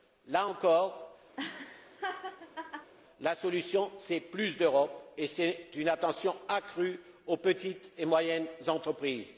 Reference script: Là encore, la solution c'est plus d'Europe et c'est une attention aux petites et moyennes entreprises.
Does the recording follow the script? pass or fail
fail